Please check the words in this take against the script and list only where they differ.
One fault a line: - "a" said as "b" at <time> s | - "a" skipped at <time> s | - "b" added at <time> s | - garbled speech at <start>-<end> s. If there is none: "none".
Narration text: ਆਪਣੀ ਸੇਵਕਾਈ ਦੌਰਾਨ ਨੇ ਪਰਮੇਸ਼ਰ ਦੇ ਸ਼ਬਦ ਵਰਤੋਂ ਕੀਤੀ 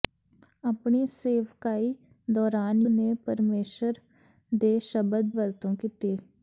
none